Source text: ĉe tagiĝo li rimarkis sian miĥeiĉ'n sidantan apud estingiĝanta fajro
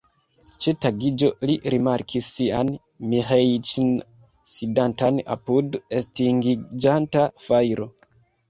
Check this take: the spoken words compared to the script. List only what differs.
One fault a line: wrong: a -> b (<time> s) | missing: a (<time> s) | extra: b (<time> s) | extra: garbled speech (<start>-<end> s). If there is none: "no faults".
no faults